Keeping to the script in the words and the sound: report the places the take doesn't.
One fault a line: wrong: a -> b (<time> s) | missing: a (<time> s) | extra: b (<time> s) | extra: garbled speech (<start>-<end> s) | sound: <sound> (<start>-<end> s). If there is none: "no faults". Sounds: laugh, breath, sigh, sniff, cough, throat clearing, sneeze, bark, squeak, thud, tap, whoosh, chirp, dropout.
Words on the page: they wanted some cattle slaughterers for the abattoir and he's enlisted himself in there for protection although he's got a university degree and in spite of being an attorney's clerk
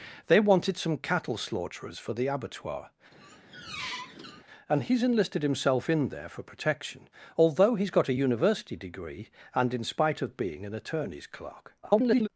sound: squeak (3.1-4.4 s)
extra: garbled speech (11.8-12.3 s)